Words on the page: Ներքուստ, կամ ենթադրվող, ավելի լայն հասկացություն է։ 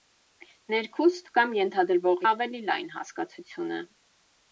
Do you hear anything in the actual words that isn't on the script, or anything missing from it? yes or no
no